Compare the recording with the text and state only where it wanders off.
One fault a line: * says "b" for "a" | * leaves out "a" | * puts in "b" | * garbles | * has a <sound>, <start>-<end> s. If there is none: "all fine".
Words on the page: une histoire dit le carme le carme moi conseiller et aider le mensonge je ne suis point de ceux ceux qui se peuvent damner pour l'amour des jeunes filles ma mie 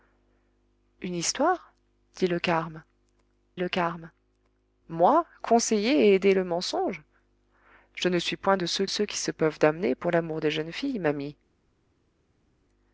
all fine